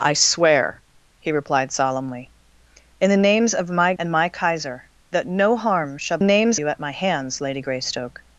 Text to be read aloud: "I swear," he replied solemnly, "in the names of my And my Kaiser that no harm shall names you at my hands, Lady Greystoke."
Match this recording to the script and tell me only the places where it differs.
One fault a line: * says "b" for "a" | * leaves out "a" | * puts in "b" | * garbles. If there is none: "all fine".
all fine